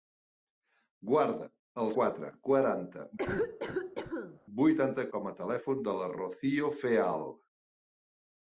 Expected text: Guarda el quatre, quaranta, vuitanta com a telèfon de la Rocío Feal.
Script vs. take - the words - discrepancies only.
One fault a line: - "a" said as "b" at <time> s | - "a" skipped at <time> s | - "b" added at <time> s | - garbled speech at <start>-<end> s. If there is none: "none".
none